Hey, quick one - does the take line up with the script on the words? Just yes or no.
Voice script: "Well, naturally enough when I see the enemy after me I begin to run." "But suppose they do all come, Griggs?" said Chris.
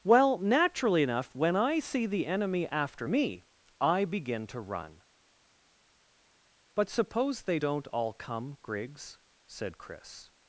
no